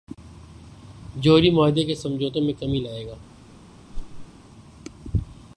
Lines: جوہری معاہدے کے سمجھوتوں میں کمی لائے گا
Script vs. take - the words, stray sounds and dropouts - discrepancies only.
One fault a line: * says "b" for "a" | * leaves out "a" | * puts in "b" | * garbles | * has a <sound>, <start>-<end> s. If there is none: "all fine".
* has a whoosh, 3.9-4.3 s